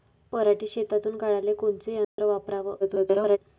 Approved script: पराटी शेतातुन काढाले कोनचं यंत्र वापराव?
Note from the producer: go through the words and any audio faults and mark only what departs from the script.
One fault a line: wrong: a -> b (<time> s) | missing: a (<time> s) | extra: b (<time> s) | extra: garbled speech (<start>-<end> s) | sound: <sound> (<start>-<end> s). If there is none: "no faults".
sound: dropout (2.0-2.2 s)
extra: garbled speech (2.8-3.4 s)